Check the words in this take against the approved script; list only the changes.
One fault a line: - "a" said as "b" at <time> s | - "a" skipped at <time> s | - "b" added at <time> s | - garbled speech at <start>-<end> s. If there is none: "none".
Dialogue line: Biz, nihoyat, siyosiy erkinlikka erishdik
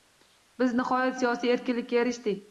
none